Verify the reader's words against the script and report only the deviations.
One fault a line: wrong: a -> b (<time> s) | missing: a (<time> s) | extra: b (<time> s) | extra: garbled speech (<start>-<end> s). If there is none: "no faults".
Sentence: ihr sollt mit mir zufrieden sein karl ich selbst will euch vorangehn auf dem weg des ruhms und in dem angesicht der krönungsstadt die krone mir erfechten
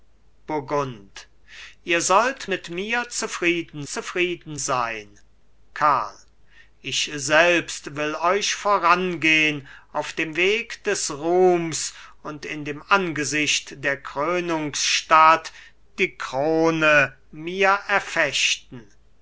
extra: zufrieden (3.8 s)